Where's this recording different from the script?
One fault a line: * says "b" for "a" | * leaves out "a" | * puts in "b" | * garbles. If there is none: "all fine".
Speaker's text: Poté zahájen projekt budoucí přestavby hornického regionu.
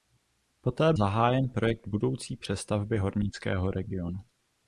all fine